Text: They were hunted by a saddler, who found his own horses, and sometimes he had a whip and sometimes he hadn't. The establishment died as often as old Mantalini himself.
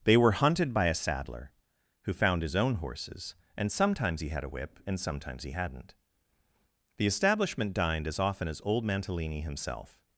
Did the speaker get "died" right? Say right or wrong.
wrong